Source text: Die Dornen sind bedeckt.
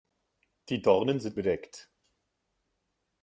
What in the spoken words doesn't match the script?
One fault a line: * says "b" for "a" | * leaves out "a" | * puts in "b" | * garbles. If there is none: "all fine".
all fine